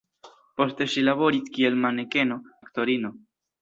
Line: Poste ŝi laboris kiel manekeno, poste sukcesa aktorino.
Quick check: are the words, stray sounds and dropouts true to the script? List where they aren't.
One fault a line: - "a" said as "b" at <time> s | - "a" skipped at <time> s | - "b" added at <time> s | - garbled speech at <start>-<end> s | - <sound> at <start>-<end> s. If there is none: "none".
- "poste sukcesa" skipped at 2.4 s